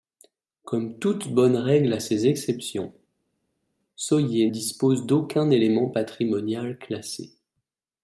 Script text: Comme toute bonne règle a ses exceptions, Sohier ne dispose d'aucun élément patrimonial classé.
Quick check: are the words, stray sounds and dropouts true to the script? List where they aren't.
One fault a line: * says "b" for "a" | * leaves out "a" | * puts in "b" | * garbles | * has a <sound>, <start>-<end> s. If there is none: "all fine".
* leaves out "ne"